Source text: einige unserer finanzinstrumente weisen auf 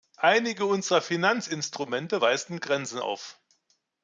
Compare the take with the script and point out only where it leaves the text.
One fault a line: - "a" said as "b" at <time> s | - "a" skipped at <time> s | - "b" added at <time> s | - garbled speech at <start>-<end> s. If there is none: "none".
- "grenzen" added at 2.6 s